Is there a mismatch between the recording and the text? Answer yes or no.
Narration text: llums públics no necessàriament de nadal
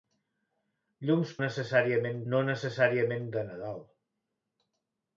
yes